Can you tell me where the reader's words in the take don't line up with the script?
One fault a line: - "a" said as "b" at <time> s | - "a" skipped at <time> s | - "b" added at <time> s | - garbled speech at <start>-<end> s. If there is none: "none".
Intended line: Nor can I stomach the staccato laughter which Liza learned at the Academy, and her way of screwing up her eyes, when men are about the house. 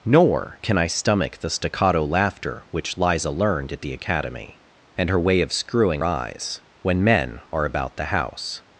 - "up her" skipped at 6.0 s